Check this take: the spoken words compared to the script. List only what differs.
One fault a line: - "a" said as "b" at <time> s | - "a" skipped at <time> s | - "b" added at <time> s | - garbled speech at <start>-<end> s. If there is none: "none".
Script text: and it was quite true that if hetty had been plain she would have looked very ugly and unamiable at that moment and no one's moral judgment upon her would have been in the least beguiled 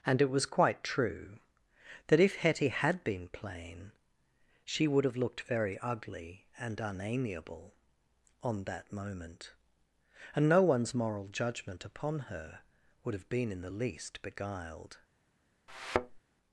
- "at" said as "on" at 8.4 s